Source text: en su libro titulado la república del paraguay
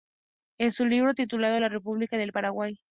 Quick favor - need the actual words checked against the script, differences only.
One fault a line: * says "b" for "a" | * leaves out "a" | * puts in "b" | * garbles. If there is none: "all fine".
all fine